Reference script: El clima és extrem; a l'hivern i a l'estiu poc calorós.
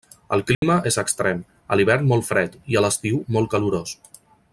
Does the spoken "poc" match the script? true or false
false